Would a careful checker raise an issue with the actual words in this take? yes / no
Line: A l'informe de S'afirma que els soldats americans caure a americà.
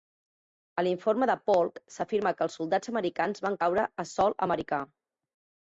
yes